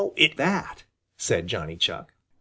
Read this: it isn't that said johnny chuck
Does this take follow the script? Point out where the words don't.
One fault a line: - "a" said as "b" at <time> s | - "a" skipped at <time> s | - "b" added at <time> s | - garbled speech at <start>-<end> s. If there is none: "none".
- "isn't" skipped at 0.3 s